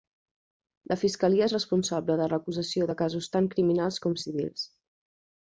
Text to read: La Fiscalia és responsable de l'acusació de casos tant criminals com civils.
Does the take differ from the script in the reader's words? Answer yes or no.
no